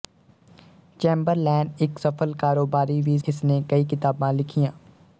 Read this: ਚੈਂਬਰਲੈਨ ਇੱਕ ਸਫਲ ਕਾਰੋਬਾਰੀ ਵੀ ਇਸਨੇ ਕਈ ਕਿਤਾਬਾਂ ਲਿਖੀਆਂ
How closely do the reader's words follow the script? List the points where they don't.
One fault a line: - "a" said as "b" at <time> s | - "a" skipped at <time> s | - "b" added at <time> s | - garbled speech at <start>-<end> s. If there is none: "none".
none